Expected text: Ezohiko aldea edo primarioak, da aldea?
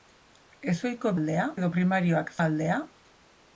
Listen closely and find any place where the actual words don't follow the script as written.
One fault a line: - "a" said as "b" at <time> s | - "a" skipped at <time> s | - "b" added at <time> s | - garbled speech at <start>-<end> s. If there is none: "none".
none